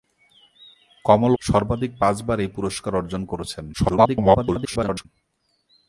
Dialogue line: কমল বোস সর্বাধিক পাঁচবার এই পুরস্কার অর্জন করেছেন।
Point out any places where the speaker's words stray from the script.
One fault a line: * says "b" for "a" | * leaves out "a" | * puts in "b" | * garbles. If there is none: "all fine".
* leaves out "বোস"
* garbles